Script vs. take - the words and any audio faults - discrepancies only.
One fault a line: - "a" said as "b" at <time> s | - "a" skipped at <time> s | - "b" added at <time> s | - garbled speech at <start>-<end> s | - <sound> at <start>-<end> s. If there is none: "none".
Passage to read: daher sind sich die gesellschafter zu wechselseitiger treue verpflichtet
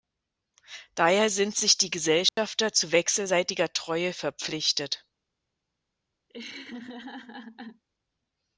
- dropout at 2.3-2.4 s
- laugh at 6.3-7.8 s